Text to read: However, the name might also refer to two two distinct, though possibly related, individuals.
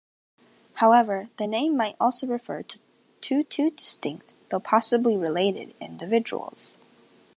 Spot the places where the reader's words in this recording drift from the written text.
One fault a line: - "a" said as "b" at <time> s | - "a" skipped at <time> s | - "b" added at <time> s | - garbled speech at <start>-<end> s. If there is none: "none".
none